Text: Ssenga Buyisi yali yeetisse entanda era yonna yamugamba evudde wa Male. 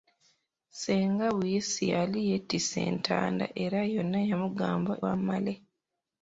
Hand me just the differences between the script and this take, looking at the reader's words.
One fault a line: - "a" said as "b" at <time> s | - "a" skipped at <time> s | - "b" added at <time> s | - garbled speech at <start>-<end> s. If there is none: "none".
- "evudde" skipped at 4.9 s